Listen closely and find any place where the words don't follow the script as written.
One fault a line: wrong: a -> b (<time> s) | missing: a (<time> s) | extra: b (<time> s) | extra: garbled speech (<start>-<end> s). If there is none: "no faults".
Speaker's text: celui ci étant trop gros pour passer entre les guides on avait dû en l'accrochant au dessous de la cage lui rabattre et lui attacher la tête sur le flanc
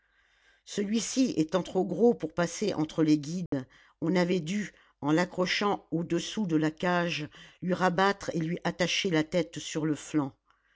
no faults